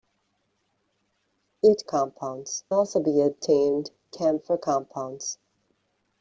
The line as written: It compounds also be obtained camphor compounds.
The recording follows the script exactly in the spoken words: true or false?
true